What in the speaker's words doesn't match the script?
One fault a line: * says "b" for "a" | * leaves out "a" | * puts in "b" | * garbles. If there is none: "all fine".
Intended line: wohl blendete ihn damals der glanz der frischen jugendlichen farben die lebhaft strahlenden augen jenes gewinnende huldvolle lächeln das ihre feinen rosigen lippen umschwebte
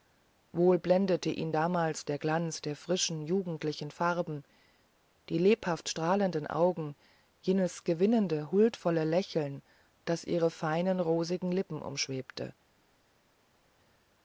all fine